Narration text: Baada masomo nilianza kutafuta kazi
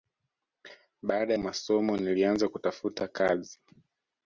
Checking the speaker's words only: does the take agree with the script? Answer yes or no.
yes